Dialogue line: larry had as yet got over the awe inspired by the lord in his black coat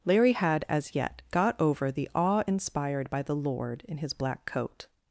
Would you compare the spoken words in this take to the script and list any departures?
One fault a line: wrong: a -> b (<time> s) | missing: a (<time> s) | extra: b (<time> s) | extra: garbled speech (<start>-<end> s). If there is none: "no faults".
no faults